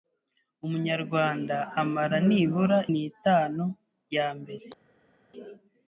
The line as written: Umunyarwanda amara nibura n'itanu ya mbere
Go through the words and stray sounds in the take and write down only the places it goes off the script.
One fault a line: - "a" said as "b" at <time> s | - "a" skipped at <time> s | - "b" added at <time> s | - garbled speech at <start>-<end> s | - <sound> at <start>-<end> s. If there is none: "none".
none